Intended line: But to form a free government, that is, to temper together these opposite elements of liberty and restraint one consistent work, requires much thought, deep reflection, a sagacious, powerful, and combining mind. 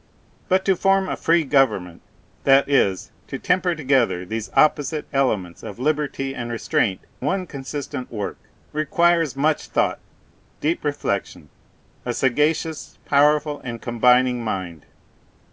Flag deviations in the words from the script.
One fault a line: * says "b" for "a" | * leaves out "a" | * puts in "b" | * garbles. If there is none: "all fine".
all fine